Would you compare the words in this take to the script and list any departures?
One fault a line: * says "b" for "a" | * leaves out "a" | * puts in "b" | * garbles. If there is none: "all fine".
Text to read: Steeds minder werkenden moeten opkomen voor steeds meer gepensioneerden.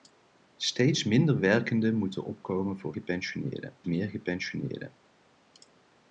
* says "gepensioneerden" for "steeds"